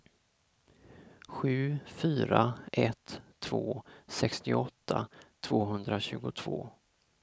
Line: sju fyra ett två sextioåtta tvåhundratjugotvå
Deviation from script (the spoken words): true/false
false